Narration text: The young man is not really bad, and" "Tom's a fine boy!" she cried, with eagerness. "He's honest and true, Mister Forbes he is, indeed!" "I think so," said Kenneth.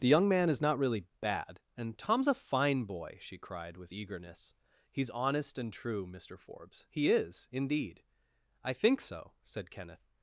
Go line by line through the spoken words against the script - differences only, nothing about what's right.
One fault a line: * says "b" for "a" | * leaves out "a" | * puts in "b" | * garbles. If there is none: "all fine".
all fine